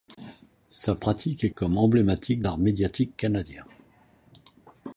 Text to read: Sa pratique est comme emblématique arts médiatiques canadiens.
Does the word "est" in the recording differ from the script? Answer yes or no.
no